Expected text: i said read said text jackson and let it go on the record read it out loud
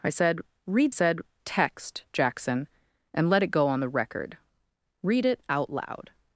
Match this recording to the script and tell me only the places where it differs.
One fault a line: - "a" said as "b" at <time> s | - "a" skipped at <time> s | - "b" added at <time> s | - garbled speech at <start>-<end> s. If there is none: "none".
none